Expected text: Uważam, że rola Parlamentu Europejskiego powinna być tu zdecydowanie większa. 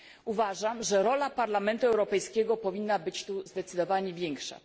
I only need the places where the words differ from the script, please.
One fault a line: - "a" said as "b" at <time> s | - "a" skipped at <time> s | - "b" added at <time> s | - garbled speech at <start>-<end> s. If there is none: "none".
none